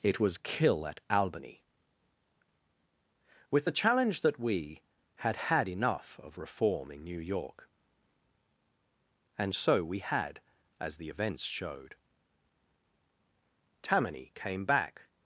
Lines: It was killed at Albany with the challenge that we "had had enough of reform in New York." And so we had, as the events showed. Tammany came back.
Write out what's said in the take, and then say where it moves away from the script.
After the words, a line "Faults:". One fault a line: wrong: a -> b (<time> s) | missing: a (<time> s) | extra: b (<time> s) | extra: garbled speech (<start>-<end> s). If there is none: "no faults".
It was kill at Albany with the challenge that we "had had enough of reform in New York." And so we had, as the events showed. Tammany came back.
Faults:
wrong: killed -> kill (0.4 s)